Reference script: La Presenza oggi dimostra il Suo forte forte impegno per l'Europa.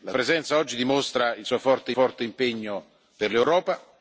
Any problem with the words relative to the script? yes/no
no